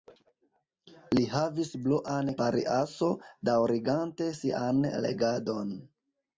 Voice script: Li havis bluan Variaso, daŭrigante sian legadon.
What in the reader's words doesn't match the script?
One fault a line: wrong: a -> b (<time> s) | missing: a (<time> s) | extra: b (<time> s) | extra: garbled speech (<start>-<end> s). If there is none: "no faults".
no faults